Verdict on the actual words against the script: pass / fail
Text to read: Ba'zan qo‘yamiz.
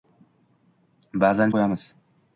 pass